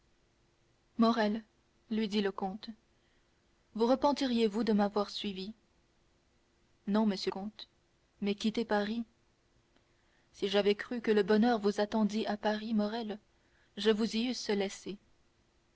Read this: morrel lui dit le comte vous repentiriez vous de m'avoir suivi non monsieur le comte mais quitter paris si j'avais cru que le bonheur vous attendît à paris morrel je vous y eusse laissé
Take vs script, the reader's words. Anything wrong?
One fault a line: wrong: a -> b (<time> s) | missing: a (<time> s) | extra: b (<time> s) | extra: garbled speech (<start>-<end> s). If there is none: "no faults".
missing: le (7.3 s)